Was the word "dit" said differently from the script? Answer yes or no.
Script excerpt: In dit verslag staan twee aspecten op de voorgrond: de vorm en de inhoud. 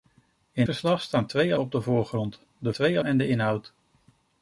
yes